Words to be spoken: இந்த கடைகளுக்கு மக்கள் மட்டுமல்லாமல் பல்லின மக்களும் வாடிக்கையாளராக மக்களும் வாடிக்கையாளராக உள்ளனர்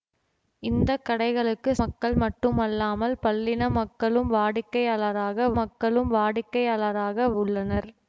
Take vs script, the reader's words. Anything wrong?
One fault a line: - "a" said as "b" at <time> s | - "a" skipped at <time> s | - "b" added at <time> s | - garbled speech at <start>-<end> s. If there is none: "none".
none